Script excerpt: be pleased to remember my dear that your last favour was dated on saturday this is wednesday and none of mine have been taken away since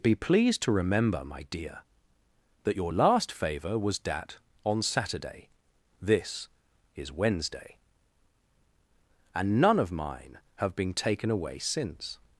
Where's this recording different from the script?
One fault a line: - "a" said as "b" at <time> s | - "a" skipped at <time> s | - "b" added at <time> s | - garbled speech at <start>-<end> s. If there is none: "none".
- "dated" said as "dat" at 4.0 s